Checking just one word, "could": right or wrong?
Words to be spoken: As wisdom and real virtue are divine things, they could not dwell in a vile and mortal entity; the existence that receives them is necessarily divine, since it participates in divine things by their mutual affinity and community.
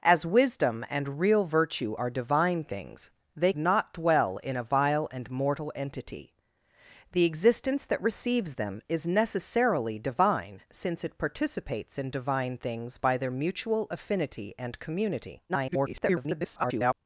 wrong